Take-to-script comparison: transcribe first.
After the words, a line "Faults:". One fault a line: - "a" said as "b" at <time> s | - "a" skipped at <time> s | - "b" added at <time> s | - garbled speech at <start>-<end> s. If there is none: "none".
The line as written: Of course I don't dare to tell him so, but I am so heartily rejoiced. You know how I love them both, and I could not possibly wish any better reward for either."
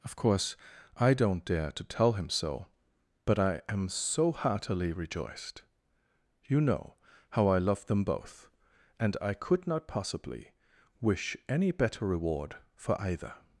Of course I don't dare to tell him so, but I am so heartily rejoiced. You know how I love them both, and I could not possibly wish any better reward for either."
Faults:
none